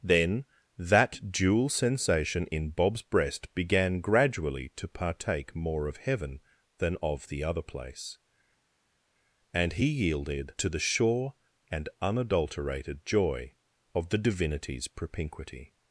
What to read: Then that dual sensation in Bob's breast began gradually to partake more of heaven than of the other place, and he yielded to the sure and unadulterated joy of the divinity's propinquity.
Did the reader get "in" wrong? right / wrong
right